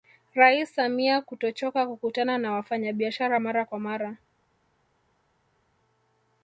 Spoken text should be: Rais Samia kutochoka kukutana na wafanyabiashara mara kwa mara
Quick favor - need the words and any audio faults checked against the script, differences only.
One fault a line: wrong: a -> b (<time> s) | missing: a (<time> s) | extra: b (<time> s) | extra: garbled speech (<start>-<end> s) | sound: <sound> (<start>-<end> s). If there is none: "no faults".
no faults